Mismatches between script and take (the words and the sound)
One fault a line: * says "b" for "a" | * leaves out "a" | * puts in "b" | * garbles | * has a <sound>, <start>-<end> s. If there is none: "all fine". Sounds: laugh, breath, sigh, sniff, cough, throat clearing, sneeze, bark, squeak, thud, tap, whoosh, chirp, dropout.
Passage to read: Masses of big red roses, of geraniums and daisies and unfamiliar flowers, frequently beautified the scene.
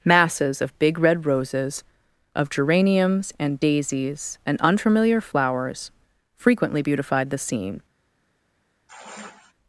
* has a sigh, 8.9-9.5 s